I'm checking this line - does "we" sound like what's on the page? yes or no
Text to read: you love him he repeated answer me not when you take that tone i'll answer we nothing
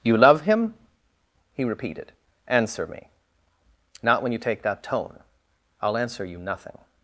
no